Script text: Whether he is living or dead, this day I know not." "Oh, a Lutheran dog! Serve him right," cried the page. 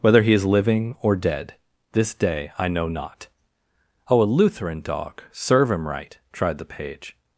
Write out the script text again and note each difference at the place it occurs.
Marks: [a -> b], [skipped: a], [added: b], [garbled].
Whether he is living or dead, this day I know not." "Oh, a Lutheran dog! Serve him right," [cried -> tried] the page.